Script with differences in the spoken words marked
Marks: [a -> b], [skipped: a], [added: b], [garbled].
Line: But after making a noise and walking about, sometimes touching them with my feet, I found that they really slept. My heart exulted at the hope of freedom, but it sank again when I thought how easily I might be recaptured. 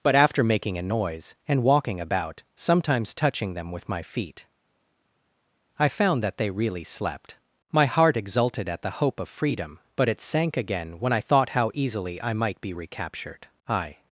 But after making a noise and walking about, sometimes touching them with my feet, I found that they really slept. My heart exulted at the hope of freedom, but it sank again when I thought how easily I might be recaptured. [added: I]